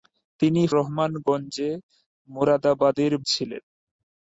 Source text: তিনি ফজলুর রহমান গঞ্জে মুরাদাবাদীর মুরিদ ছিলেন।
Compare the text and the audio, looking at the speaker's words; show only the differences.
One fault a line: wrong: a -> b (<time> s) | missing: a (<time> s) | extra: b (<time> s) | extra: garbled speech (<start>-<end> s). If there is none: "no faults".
missing: ফজলুর (0.6 s)
missing: মুরিদ (3.1 s)